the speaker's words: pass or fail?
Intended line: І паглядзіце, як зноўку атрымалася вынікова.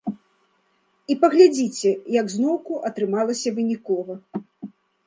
pass